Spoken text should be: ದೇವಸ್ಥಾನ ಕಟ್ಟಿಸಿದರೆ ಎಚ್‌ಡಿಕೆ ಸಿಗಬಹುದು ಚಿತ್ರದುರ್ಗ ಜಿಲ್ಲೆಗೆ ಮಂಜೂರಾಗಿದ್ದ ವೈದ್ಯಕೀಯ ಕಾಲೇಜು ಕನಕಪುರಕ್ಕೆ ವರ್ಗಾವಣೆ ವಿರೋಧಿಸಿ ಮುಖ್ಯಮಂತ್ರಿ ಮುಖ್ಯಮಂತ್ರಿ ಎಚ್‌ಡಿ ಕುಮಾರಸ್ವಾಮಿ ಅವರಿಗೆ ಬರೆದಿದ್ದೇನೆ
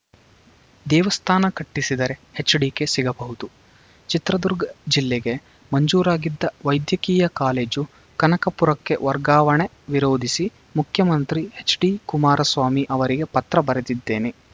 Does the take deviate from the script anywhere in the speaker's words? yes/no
yes